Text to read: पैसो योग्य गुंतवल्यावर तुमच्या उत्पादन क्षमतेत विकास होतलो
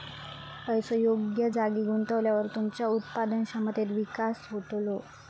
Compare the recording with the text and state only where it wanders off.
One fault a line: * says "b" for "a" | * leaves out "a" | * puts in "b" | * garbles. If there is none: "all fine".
* puts in "जागी"